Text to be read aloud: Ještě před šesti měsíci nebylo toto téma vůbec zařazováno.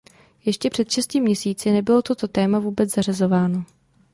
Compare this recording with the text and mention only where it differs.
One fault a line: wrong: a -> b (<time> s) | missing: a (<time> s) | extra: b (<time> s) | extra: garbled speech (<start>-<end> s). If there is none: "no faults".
no faults